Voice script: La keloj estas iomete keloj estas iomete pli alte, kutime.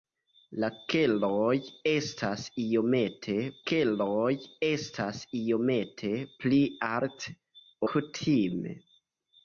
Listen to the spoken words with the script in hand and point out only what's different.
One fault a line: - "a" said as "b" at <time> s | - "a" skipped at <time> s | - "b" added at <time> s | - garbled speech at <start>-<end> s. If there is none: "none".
none